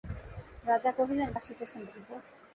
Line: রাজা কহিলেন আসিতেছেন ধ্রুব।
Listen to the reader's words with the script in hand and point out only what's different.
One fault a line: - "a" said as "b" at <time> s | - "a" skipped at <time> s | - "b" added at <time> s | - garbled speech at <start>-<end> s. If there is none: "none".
none